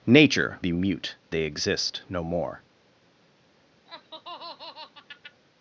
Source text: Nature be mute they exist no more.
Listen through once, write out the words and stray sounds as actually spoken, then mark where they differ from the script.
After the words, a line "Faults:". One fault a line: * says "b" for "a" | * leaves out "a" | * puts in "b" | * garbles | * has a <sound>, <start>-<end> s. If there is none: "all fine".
Nature be mute they exist no more.
Faults:
* has a laugh, 3.9-5.4 s